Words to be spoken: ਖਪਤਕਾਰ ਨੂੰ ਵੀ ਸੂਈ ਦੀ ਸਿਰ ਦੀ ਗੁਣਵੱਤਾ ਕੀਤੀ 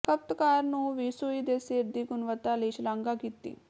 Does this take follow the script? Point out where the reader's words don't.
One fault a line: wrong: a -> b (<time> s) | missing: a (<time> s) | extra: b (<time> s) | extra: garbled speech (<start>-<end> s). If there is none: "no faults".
wrong: ਦੀ -> ਦੇ (1.4 s)
extra: ਲਈ ਸ਼ਲਾਘਾ (2.5 s)